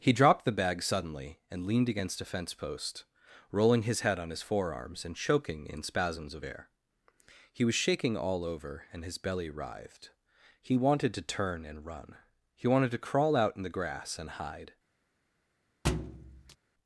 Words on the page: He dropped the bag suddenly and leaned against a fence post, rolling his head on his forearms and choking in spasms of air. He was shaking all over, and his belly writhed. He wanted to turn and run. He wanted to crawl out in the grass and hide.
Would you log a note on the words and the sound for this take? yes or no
yes